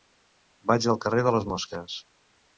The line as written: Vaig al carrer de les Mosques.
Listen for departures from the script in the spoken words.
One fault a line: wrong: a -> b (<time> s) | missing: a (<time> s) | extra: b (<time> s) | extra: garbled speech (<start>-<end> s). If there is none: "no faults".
no faults